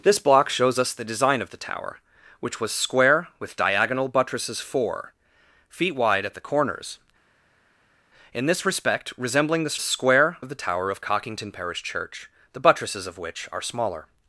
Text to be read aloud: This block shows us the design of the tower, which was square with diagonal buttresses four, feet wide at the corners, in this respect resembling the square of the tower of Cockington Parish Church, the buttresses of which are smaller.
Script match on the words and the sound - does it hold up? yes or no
yes